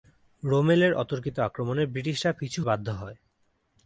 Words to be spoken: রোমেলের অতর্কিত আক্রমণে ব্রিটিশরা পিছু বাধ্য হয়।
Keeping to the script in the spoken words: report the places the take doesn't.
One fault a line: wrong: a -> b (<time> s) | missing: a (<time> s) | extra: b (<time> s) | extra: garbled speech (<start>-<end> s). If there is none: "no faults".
no faults